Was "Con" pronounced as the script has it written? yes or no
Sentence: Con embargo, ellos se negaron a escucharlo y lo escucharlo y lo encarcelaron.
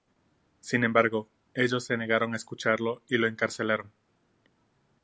no